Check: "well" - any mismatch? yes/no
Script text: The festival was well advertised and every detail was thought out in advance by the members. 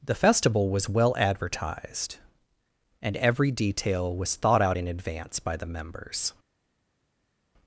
no